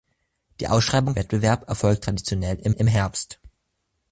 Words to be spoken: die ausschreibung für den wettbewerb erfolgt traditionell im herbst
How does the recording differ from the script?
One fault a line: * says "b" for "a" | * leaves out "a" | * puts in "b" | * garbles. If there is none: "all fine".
* leaves out "für den"
* puts in "im"